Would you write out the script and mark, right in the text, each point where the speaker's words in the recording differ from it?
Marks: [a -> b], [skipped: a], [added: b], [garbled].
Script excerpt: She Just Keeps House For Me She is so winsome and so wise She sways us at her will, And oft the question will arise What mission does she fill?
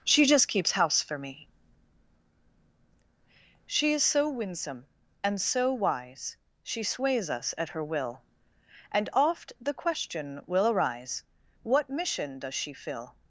She Just Keeps House For Me She is so winsome and so wise She sways us at her will, And oft the question will arise What mission does she fill?